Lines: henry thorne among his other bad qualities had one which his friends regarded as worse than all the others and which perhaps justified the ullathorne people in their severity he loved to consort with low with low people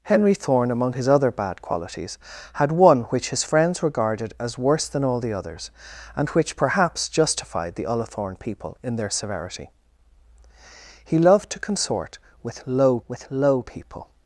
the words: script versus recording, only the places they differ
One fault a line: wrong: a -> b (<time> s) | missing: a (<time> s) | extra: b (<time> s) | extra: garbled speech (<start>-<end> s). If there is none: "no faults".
no faults